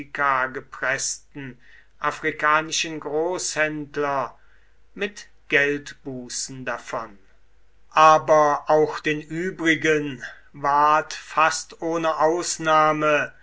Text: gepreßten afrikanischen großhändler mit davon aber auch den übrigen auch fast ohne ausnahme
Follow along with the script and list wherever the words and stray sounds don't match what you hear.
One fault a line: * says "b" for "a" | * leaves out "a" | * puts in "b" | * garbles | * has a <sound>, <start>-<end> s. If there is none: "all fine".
* puts in "geldbußen"
* says "ward" for "auch"